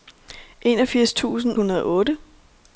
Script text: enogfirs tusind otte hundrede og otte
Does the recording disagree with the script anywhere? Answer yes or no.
yes